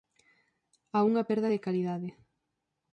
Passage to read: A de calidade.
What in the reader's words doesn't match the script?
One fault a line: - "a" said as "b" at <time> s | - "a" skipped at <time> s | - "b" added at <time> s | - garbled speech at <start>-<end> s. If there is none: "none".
- "unha perda" added at 1.1 s